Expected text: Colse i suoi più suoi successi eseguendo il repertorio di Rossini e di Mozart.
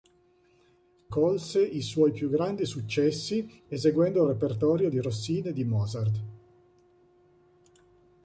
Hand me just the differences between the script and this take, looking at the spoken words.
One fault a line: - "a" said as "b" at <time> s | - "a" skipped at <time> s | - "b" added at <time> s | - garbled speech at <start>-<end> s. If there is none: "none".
- "suoi" said as "grandi" at 2.3 s